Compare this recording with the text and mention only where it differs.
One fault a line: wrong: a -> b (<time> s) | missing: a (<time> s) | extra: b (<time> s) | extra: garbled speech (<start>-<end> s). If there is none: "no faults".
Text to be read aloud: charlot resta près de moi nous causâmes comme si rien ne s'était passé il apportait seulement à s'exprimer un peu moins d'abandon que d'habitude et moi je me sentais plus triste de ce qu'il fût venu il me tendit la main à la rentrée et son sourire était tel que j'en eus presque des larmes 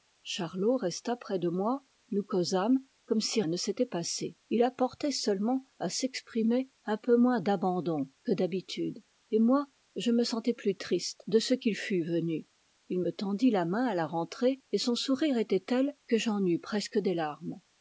missing: rien (3.4 s)